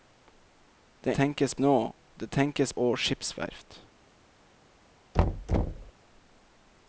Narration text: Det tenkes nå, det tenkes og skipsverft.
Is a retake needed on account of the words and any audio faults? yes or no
yes